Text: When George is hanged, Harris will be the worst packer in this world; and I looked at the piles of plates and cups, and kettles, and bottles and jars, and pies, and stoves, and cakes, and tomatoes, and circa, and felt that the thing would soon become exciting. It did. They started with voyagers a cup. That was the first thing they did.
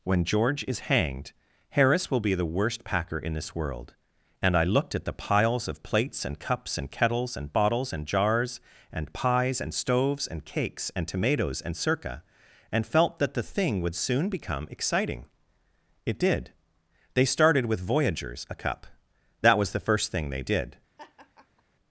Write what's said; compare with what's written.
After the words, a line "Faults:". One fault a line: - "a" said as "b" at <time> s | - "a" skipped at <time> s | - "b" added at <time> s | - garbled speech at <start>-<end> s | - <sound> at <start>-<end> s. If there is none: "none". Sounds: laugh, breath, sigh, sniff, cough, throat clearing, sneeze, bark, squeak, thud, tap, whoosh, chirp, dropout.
When George is hanged, Harris will be the worst packer in this world; and I looked at the piles of plates and cups, and kettles, and bottles and jars, and pies, and stoves, and cakes, and tomatoes, and circa, and felt that the thing would soon become exciting. It did. They started with voyagers a cup. That was the first thing they did.
Faults:
- laugh at 21.0-21.6 s